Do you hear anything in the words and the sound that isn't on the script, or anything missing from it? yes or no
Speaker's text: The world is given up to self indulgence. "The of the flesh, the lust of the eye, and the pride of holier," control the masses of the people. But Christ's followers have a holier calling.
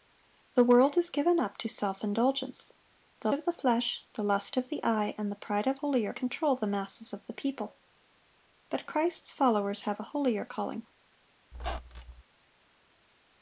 yes